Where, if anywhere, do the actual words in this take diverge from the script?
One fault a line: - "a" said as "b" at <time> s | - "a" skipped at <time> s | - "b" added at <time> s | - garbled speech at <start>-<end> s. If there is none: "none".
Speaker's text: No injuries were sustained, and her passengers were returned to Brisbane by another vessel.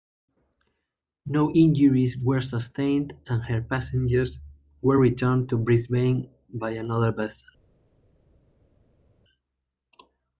none